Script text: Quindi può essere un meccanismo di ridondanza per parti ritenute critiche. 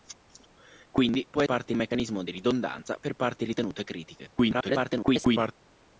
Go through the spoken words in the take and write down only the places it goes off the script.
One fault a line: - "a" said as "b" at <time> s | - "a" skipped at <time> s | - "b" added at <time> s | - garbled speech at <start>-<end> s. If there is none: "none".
- "essere" said as "parti" at 1.4 s
- garbled speech at 4.4-5.5 s